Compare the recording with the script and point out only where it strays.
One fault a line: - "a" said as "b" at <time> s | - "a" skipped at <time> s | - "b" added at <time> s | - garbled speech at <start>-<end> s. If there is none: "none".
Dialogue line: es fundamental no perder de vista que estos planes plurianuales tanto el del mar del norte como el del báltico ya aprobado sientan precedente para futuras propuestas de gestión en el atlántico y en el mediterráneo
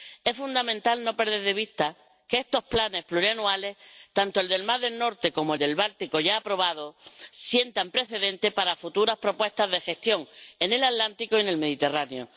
none